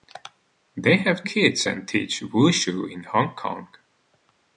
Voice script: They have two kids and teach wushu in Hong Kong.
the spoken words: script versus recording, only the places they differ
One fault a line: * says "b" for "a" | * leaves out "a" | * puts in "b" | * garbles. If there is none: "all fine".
* leaves out "two"